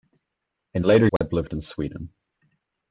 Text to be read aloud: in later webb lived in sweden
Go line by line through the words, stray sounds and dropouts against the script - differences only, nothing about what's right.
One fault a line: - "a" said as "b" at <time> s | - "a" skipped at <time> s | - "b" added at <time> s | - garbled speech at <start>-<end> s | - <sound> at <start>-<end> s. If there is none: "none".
- dropout at 1.2-1.2 s